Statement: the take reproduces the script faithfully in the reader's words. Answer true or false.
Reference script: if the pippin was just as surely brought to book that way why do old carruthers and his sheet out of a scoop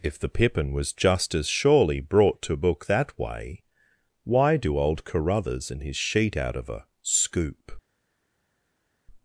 true